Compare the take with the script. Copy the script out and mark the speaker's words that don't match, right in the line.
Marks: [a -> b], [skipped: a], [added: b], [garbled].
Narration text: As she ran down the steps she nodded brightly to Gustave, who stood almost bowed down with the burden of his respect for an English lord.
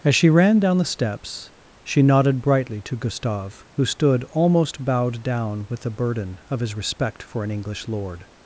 As she ran down the steps she nodded brightly to Gustave, who stood almost bowed down with the burden of his respect for an English lord.